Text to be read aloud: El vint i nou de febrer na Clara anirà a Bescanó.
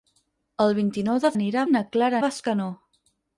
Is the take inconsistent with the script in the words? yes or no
yes